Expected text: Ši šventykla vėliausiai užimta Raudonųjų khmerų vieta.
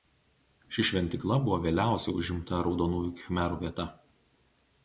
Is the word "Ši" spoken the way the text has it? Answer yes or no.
yes